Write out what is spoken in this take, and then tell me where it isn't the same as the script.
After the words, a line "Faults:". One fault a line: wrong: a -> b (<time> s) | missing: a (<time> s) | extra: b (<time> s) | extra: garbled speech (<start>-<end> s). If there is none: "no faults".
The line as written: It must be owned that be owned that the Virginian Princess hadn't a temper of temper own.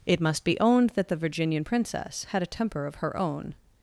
It must be owned that the Virginian Princess had a temper of her own.
Faults:
missing: be owned that (1.1 s)
wrong: hadn't -> had (2.3 s)
wrong: temper -> her (2.9 s)